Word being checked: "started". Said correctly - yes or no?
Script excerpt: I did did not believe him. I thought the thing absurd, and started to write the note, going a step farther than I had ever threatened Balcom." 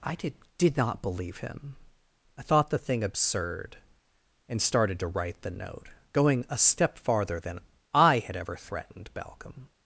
yes